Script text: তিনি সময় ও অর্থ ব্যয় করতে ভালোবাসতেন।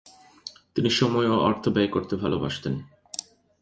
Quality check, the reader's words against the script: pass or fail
pass